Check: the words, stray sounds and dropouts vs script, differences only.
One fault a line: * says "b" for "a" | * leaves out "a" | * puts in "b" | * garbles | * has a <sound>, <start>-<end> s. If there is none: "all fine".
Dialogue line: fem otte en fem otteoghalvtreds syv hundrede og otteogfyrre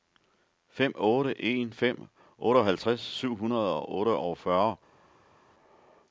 all fine